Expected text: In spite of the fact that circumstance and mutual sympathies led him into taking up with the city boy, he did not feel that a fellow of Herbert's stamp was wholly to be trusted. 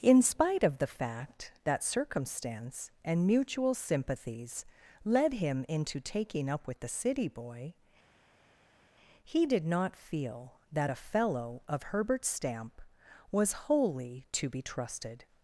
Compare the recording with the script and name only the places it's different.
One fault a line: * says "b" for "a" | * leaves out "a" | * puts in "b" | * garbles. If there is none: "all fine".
all fine